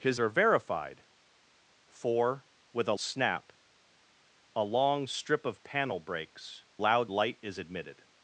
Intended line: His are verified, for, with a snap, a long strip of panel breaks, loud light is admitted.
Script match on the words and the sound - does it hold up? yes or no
yes